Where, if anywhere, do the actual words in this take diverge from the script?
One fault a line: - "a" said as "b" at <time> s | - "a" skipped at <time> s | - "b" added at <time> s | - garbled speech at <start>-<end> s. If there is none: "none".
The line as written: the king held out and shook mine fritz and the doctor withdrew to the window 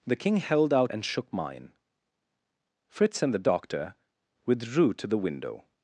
none